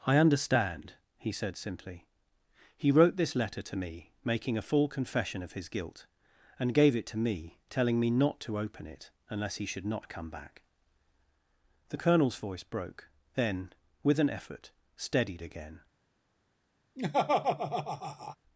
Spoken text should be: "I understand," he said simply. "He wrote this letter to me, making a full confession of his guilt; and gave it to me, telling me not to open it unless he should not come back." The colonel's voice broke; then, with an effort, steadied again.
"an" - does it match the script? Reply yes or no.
yes